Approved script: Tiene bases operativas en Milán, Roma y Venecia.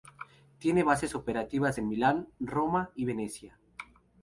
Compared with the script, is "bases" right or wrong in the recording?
right